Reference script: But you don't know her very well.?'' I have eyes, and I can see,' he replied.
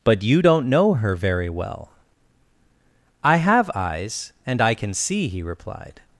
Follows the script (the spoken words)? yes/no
yes